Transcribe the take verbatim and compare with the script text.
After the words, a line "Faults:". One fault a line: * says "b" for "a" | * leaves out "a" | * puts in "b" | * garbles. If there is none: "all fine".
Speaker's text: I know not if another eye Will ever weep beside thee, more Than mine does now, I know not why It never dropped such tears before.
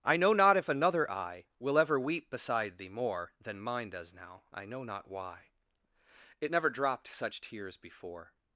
I know not if another eye Will ever weep beside thee, more Than mine does now, I know not why It never dropped such tears before.
Faults:
all fine